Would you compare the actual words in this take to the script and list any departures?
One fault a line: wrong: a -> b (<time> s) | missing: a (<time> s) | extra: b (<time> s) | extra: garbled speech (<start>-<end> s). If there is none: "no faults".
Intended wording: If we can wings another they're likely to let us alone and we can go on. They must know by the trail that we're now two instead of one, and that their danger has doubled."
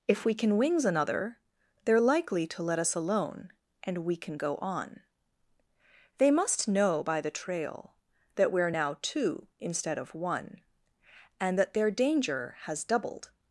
no faults